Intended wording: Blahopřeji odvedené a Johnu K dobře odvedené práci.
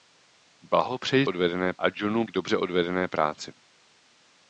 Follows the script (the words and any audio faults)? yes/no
yes